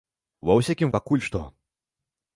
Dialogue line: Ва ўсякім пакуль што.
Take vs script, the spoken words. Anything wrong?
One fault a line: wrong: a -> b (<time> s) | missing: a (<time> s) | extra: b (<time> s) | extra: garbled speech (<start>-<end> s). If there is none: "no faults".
no faults